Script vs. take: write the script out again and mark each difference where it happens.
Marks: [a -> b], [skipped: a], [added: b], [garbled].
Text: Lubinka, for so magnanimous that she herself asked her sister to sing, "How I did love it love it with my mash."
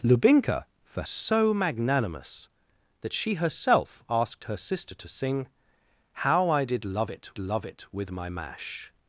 Lubinka, for so magnanimous that she herself asked her sister to sing, "How I did love it love it with my mash."